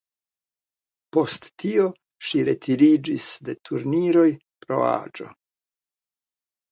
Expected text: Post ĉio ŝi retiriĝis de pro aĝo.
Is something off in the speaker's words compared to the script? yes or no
yes